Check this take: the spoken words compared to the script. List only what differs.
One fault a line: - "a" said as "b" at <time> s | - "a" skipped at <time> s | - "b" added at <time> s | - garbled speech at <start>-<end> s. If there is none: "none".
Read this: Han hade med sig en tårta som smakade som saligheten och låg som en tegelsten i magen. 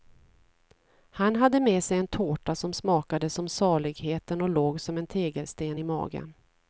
none